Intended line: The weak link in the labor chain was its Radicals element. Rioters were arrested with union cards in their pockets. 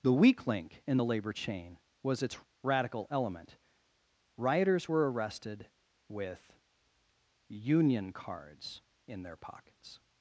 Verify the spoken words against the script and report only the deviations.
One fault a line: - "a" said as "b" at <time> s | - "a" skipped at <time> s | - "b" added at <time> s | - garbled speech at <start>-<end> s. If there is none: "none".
- "Radicals" said as "Radical" at 2.6 s